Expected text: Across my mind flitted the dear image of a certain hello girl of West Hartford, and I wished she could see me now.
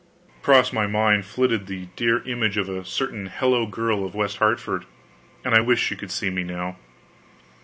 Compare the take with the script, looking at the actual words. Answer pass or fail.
pass